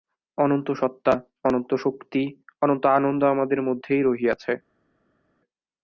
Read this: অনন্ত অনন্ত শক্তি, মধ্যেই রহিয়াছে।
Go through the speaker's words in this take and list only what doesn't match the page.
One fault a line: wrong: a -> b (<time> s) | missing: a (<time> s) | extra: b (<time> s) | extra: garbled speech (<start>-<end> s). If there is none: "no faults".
extra: সত্তা (0.7 s)
extra: অনন্ত আনন্দ আমাদের (2.6 s)